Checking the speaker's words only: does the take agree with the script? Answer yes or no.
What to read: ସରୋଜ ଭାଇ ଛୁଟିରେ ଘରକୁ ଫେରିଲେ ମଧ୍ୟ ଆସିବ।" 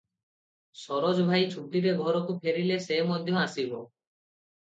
no